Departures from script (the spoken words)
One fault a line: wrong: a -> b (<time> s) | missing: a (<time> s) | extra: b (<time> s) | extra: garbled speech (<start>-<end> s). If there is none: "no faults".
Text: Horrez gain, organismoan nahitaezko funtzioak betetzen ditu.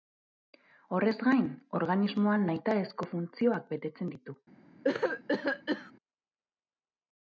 no faults